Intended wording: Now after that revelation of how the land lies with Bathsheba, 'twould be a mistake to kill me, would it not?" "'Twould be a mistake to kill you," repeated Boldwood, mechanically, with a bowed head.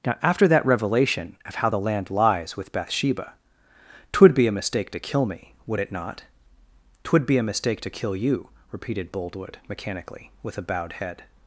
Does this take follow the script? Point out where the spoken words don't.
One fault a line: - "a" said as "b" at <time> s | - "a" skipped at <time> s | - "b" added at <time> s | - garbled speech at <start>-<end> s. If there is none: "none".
none